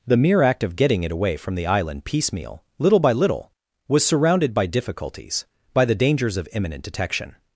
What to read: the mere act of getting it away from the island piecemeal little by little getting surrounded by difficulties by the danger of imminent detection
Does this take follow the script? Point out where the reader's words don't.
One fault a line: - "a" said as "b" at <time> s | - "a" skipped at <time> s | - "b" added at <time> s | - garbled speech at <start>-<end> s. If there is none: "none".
- "getting" said as "was" at 3.9 s
- "danger" said as "dangers" at 6.0 s